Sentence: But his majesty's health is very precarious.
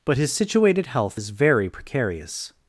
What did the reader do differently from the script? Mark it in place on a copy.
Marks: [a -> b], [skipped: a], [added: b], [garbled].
But his [majesty's -> situated] health is very precarious.